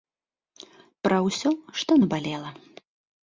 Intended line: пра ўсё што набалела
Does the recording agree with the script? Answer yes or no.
yes